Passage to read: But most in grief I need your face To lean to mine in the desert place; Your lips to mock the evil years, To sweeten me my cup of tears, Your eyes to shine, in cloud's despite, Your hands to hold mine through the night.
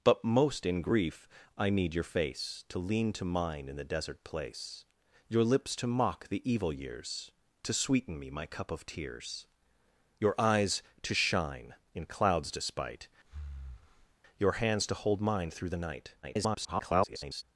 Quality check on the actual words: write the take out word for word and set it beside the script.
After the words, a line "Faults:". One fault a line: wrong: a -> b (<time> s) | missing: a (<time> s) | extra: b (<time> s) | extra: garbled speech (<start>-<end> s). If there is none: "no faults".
But most in grief I need your face To lean to mine in the desert place; Your lips to mock the evil years, To sweeten me my cup of tears, Your eyes to shine, in cloud's despite, Your hands to hold mine through the night. [garbled]
Faults:
extra: garbled speech (16.2-17.4 s)